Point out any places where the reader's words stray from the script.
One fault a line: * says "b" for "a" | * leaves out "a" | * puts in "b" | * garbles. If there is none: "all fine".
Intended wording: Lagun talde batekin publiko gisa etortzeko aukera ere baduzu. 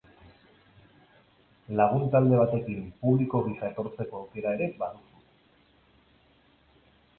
all fine